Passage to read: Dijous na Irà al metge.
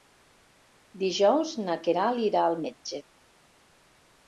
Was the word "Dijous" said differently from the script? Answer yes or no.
no